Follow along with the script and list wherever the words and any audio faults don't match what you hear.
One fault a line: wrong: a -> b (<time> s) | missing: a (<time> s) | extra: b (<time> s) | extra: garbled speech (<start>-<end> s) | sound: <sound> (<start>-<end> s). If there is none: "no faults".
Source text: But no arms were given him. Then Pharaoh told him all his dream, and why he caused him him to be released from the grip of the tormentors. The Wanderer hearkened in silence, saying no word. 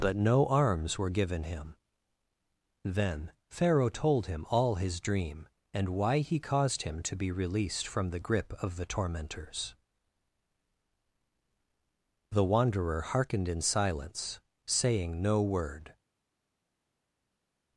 missing: him (7.0 s)